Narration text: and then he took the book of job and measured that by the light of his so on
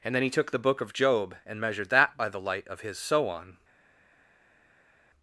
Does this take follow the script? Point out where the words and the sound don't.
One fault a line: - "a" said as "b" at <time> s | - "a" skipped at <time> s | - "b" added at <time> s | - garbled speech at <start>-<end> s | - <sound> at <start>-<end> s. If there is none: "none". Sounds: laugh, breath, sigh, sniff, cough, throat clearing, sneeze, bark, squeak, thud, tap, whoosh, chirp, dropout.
none